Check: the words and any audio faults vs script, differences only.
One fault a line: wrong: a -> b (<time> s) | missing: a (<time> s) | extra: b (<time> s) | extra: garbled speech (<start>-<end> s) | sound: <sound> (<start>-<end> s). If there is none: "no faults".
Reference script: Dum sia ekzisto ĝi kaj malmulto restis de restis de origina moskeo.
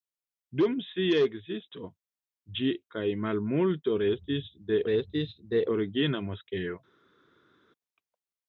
no faults